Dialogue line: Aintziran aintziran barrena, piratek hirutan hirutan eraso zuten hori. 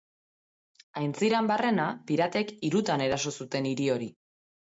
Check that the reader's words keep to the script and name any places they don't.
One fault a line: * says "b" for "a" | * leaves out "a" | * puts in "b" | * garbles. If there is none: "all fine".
* leaves out "aintziran"
* leaves out "hirutan"
* puts in "hiri"